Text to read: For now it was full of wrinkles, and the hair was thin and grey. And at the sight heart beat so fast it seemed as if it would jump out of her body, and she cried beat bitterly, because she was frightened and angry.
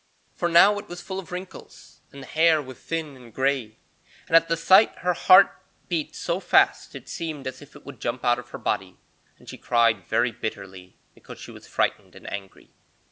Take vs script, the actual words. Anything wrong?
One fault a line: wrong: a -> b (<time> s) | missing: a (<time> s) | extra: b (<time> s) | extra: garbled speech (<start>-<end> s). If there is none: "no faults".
extra: her (5.0 s)
wrong: beat -> very (10.1 s)